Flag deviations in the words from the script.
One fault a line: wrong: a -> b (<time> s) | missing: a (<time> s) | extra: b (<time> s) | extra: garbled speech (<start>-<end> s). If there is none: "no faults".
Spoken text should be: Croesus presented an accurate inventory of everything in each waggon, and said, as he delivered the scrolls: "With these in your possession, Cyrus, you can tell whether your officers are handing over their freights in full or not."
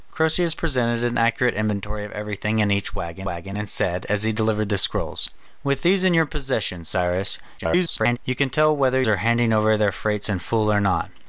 extra: waggon (3.2 s)
extra: garbled speech (7.6-8.2 s)
missing: your officers (9.0 s)